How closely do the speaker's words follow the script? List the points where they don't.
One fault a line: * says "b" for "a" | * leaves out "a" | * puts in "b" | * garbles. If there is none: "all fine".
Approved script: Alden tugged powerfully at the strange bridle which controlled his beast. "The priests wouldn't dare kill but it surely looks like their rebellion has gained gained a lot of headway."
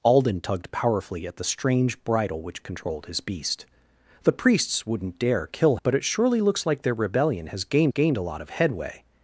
all fine